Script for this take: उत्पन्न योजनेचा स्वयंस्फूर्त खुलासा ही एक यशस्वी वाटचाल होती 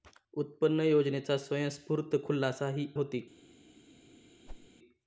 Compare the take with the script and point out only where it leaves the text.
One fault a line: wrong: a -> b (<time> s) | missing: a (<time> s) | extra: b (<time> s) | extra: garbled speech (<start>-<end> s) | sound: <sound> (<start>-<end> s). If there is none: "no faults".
missing: एक यशस्वी वाटचाल (2.9 s)
sound: whoosh (4.5-4.7 s)